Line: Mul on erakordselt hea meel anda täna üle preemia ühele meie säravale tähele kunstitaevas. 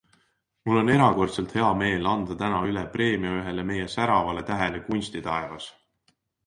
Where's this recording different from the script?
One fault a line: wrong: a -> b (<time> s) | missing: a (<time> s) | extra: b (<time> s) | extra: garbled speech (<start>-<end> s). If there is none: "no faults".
no faults